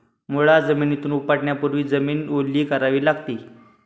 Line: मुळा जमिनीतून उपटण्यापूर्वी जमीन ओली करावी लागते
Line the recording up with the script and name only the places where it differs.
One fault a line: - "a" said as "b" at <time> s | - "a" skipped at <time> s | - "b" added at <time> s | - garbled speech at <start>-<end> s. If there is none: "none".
none